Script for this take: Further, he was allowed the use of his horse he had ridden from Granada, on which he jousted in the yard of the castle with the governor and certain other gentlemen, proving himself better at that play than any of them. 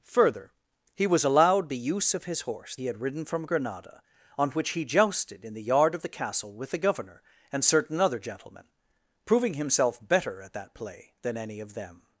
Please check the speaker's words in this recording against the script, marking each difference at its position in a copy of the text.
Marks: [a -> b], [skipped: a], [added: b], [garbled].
Further, he was allowed the use of his horse he had ridden from Granada, on which he jousted in the yard of the castle with the governor and certain other gentlemen, proving himself better at that play than any of them.